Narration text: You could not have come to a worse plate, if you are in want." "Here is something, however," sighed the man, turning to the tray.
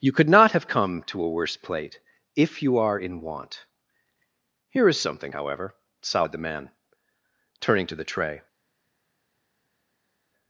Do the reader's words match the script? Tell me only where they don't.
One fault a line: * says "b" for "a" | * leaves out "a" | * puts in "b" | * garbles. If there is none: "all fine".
all fine